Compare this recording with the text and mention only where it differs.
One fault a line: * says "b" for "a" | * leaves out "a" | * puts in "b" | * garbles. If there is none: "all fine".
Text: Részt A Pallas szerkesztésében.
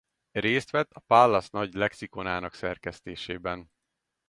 * puts in "vett"
* puts in "nagy lexikonának"